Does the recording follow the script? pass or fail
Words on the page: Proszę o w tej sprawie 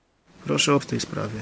pass